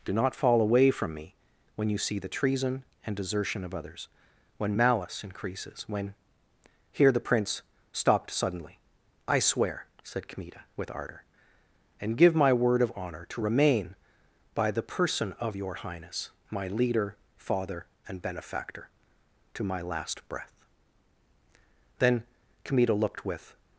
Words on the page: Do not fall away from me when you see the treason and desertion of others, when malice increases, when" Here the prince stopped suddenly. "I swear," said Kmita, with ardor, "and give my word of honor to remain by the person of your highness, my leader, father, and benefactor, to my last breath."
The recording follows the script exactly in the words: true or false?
false